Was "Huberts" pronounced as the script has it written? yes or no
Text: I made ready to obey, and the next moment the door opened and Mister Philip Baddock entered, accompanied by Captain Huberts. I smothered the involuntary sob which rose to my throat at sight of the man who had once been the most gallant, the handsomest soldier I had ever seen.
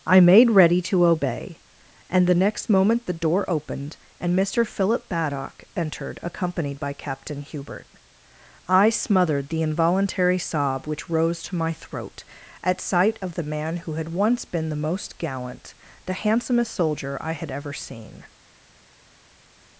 no